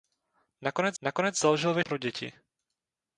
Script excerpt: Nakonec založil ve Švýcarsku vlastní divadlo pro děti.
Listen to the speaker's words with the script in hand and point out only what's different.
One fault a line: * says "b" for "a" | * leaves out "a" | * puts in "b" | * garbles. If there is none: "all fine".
* puts in "nakonec"
* leaves out "Švýcarsku vlastní divadlo"